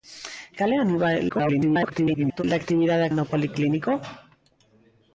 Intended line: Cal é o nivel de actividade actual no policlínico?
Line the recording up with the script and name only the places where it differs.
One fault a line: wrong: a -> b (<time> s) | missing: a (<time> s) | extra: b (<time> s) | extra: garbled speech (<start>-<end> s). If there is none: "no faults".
extra: garbled speech (1.3-2.4 s)
missing: actual (3.1 s)